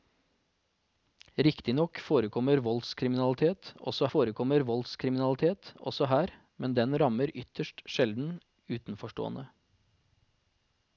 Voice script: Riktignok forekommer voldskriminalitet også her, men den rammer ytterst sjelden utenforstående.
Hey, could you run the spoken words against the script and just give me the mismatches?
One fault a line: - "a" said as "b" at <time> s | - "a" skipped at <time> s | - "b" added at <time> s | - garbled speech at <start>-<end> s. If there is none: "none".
- "forekommer voldskriminalitet også" added at 4.1 s